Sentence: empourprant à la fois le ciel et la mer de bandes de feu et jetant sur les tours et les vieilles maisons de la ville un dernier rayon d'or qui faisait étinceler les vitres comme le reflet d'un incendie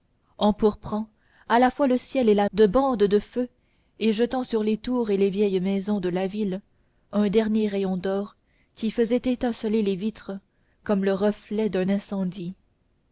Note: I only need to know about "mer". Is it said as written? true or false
false